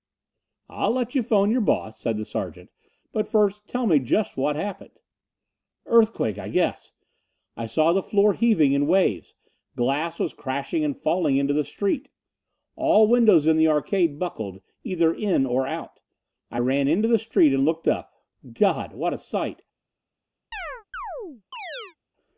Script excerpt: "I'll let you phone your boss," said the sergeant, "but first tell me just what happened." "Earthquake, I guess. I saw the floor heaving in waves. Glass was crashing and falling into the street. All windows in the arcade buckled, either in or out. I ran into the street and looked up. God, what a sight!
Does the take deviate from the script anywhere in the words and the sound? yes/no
yes